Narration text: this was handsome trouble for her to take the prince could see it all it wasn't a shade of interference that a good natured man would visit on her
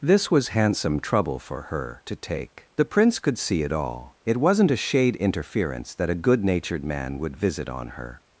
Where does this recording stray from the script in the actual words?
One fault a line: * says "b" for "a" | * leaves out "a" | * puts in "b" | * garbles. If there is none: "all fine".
* leaves out "of"